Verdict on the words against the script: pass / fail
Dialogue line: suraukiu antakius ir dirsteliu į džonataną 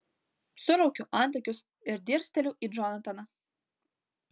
pass